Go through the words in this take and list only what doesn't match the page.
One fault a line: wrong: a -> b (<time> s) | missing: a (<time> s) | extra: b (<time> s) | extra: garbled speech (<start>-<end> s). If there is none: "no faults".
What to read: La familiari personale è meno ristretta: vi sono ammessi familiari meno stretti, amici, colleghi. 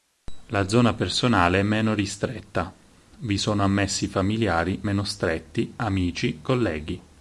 wrong: familiari -> zona (0.7 s)